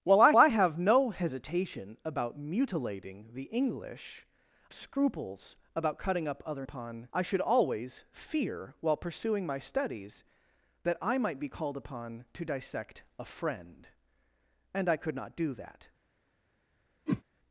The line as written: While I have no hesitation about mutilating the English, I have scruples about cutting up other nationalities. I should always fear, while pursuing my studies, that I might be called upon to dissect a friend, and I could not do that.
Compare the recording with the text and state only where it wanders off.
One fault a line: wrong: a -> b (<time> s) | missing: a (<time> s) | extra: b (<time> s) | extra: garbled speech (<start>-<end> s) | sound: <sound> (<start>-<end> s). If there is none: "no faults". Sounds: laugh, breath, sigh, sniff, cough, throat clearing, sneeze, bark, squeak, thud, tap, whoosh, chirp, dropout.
extra: I (0.4 s)
missing: I have (4.3 s)
wrong: nationalities -> upon (6.6 s)
sound: whoosh (17.1-17.2 s)